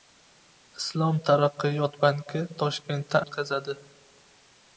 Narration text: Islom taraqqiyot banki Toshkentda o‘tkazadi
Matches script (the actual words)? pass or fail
pass